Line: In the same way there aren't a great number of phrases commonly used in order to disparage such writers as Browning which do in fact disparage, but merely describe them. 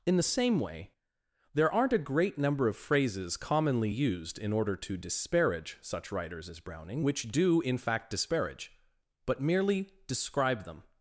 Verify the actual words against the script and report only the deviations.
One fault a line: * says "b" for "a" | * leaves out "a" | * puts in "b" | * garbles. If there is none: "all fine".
all fine